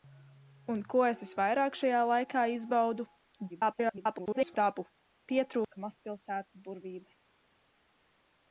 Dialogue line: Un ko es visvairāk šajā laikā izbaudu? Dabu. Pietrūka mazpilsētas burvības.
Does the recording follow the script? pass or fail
fail